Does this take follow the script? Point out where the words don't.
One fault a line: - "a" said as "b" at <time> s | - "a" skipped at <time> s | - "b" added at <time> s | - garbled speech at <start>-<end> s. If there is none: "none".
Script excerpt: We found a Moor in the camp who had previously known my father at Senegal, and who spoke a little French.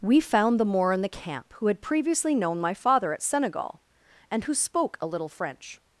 - "a" said as "the" at 0.6 s